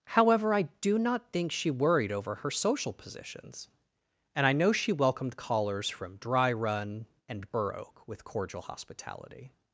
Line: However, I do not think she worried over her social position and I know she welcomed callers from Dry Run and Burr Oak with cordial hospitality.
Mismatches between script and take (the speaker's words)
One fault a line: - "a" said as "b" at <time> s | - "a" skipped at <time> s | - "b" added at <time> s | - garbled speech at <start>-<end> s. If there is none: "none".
- "position" said as "positions" at 2.9 s